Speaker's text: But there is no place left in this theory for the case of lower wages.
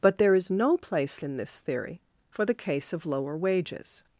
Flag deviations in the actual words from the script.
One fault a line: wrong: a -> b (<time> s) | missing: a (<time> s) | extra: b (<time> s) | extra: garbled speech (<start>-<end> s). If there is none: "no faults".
missing: left (1.2 s)